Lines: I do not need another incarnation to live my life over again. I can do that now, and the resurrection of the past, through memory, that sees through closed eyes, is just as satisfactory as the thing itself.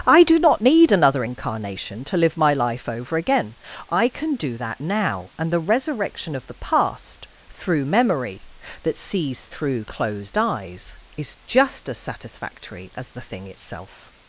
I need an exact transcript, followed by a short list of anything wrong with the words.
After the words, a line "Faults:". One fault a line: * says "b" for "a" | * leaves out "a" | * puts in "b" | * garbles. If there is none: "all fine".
I do not need another incarnation to live my life over again. I can do that now, and the resurrection of the past, through memory, that sees through closed eyes, is just as satisfactory as the thing itself.
Faults:
all fine